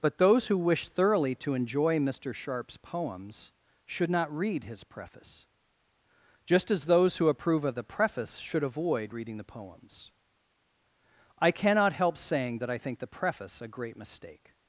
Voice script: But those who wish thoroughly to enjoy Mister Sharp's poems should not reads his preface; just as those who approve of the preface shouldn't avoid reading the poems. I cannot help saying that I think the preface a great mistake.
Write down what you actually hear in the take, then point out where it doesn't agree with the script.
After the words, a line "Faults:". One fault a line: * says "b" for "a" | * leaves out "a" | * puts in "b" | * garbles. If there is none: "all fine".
But those who wish thoroughly to enjoy Mister Sharp's poems should not read his preface; just as those who approve of the preface should avoid reading the poems. I cannot help saying that I think the preface a great mistake.
Faults:
* says "read" for "reads"
* says "should" for "shouldn't"